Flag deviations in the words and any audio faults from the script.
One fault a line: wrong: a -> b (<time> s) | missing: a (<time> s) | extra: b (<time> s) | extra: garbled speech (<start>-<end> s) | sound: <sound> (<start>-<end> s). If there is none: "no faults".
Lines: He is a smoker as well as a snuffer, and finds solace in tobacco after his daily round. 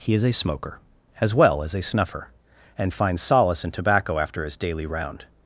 no faults